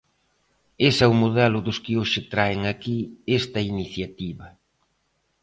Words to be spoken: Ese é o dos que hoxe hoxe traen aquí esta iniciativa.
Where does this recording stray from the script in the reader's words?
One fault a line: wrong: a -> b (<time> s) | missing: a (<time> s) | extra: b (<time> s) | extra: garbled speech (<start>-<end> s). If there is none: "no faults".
extra: modelo (1.2 s)
missing: hoxe (2.2 s)